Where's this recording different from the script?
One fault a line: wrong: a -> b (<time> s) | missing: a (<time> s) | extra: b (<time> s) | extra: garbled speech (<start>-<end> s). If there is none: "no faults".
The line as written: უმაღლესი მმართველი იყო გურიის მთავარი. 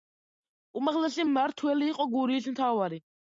no faults